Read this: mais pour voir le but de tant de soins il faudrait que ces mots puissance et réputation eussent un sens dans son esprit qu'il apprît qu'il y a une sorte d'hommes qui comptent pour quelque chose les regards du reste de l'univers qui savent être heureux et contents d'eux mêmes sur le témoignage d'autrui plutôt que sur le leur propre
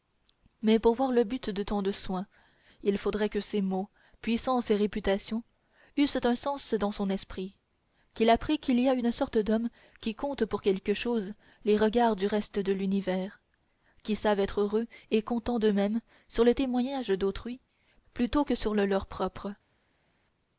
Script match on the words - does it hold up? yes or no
yes